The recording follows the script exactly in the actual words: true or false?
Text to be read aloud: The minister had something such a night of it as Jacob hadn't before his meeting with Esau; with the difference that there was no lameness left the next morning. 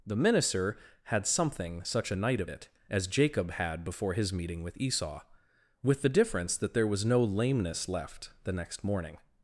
false